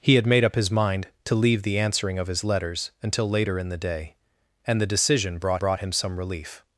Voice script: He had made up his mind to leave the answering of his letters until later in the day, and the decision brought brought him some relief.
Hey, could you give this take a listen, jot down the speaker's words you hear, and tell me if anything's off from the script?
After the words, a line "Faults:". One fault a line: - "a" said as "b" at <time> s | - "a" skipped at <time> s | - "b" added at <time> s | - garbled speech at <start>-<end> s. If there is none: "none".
He had made up his mind to leave the answering of his letters until later in the day, and the decision brought brought him some relief.
Faults:
none